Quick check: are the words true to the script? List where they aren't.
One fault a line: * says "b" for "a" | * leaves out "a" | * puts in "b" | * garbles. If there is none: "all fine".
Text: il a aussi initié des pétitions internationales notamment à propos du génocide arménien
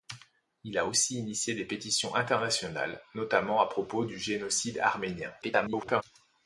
* garbles